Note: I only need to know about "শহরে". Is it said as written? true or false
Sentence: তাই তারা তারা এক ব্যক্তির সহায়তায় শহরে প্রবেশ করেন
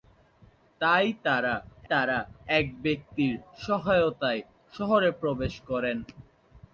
true